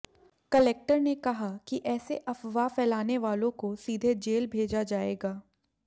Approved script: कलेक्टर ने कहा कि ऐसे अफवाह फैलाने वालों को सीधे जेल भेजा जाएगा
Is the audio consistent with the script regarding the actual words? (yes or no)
yes